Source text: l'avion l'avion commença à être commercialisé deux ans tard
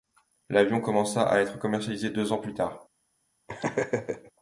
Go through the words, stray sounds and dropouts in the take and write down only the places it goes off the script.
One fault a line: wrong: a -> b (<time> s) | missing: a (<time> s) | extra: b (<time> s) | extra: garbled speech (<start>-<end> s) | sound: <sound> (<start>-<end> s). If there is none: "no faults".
missing: l'avion (0.8 s)
extra: plus (2.4 s)
sound: laugh (3.5-4.3 s)